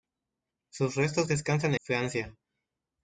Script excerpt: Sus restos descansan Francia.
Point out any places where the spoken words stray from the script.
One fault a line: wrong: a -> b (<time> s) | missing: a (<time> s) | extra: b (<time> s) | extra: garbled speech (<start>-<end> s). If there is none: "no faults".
no faults